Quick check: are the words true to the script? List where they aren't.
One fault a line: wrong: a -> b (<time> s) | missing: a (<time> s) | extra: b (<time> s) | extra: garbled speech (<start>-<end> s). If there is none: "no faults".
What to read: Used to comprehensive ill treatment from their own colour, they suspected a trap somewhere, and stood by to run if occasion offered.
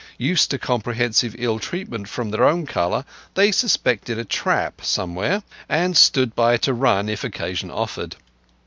no faults